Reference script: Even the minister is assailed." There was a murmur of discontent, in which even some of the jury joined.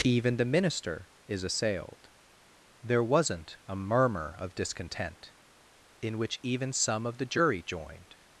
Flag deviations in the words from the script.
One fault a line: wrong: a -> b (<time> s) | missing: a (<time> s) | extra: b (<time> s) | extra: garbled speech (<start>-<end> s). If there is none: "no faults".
wrong: was -> wasn't (3.0 s)